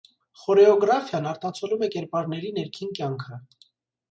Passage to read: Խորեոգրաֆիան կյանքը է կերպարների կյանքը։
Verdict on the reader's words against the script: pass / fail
fail